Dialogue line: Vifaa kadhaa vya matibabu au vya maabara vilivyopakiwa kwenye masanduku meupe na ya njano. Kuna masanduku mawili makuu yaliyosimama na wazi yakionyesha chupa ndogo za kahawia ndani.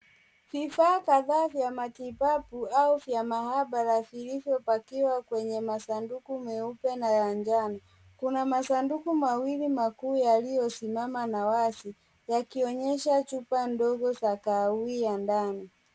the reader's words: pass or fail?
pass